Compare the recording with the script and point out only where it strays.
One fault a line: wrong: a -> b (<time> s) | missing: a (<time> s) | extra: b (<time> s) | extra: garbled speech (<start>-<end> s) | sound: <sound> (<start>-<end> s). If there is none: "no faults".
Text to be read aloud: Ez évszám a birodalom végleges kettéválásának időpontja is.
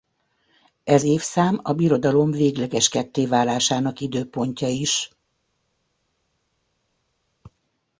no faults